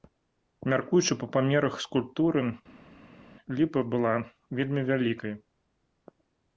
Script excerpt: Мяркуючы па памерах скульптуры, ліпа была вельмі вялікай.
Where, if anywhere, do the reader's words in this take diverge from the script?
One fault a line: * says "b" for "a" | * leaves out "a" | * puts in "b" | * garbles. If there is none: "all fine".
all fine